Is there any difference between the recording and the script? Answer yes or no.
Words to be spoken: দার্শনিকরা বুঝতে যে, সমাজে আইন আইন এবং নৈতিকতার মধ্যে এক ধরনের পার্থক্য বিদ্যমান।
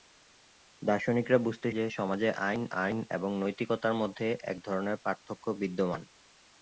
no